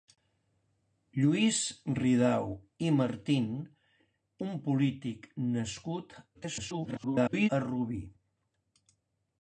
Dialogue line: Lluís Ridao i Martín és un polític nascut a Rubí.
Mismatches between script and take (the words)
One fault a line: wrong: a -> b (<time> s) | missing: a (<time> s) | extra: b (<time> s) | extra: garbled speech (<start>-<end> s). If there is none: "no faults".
missing: és (3.5 s)
extra: garbled speech (6.3-7.5 s)